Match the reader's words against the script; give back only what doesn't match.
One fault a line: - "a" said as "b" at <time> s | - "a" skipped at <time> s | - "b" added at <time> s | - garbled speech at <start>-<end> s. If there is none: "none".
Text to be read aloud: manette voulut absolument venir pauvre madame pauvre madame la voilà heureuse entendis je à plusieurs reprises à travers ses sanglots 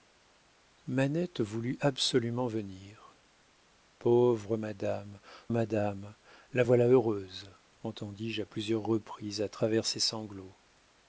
- "pauvre" skipped at 5.2 s